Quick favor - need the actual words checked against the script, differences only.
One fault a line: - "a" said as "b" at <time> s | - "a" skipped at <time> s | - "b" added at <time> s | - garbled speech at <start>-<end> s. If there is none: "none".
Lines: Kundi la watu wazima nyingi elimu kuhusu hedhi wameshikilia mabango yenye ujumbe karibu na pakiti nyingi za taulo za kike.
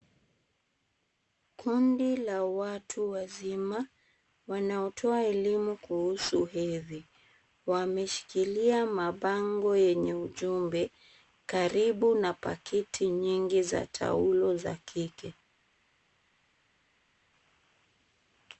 - "nyingi" said as "wanaotoa" at 4.5 s